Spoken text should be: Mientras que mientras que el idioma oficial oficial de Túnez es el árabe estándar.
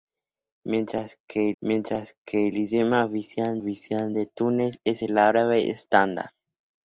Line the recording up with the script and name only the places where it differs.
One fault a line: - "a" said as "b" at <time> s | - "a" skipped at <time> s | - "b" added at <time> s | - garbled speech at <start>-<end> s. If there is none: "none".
none